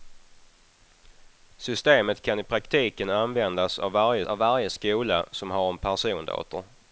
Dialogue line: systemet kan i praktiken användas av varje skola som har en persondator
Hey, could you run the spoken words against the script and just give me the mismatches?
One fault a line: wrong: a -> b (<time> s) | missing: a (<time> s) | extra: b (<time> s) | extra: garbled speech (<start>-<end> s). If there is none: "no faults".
extra: av varje (4.3 s)